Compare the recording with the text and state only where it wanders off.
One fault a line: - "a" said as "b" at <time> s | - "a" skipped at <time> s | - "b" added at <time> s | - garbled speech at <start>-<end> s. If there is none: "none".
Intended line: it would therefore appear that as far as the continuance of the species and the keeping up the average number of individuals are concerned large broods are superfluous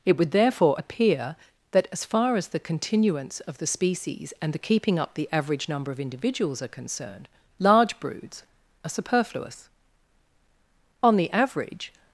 - "on the average" added at 11.0 s